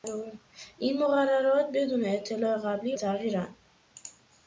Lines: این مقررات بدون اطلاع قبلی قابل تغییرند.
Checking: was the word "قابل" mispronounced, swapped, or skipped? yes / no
yes